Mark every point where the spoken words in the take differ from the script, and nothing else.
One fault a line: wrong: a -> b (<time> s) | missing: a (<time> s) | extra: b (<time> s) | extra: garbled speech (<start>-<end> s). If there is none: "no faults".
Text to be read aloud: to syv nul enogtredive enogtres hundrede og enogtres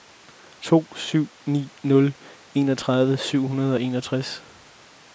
extra: ni (1.4 s)
wrong: enogtres -> syv (3.2 s)